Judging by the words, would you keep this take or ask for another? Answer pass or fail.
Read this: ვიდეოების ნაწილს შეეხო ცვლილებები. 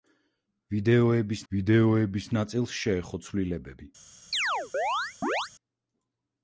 fail